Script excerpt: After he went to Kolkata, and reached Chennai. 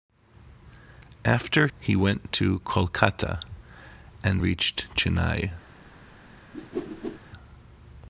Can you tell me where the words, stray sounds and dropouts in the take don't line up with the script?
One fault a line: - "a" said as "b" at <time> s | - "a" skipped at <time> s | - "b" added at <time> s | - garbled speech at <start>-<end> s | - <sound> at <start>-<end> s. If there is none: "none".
- whoosh at 6.5-7.2 s